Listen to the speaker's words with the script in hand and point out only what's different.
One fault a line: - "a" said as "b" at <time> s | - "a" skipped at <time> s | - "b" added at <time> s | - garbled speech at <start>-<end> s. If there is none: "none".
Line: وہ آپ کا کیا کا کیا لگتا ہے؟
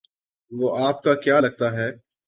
- "کا کیا" skipped at 1.4 s